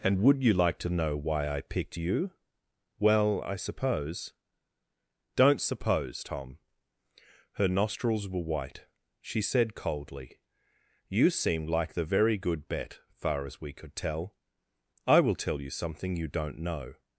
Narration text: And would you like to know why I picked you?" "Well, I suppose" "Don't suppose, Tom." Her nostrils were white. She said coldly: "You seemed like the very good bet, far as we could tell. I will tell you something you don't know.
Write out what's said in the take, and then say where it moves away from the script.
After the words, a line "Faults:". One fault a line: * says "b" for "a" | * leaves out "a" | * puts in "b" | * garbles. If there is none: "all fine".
And would you like to know why I picked you?" "Well, I suppose" "Don't suppose, Tom." Her nostrils were white. She said coldly: "You seemed like the very good bet, far as we could tell. I will tell you something you don't know.
Faults:
all fine